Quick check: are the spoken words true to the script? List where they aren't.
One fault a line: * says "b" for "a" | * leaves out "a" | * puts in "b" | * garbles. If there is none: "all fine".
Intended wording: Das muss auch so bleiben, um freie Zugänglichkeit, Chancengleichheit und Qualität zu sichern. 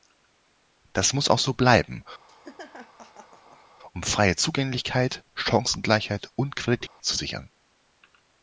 all fine